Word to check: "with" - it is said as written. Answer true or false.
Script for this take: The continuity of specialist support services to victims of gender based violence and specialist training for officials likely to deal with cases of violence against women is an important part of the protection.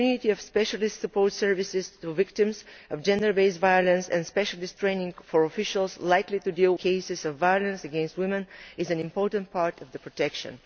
false